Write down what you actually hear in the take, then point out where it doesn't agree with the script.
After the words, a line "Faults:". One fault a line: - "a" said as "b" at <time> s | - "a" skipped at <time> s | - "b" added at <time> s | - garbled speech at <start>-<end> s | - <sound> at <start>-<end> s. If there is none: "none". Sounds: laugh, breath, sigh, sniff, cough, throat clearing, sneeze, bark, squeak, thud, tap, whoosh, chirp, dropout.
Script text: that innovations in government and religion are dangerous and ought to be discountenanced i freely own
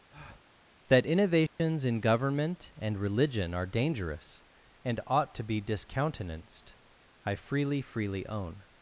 that innovations in government and religion are dangerous and ought to be discountenanced i freely freely own
Faults:
- breath at 0.1-0.5 s
- dropout at 1.5-1.6 s
- "freely" added at 7.8 s